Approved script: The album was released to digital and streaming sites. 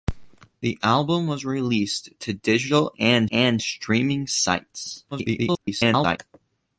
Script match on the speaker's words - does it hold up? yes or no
no